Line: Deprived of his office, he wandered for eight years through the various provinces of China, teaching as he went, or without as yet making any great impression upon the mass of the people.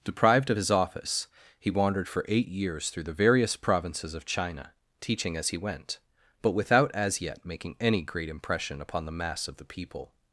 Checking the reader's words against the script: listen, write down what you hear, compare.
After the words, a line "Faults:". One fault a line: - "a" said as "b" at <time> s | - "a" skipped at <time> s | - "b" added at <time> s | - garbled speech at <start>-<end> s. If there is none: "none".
Deprived of his office, he wandered for eight years through the various provinces of China, teaching as he went, but without as yet making any great impression upon the mass of the people.
Faults:
- "or" said as "but" at 6.4 s